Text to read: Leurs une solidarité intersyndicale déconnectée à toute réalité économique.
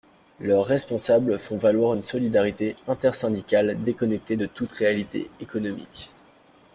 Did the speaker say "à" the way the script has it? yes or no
no